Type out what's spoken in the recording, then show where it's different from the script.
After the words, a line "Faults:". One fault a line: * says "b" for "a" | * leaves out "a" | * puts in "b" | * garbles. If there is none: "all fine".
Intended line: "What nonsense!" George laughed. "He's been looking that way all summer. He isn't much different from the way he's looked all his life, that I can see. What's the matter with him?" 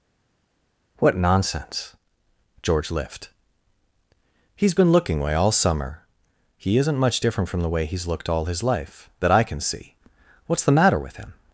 "What nonsense!" George lift. "He's been looking way all summer. He isn't much different from the way he's looked all his life, that I can see. What's the matter with him?"
Faults:
* says "lift" for "laughed"
* leaves out "that"